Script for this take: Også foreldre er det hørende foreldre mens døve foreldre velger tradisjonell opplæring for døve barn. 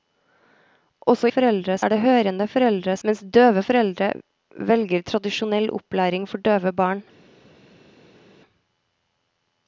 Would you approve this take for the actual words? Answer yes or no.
yes